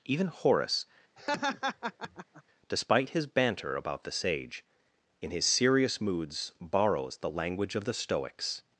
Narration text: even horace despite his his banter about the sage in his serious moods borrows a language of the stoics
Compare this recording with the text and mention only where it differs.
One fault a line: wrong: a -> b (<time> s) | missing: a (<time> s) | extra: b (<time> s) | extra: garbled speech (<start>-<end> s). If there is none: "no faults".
missing: his (3.3 s)
wrong: a -> the (7.2 s)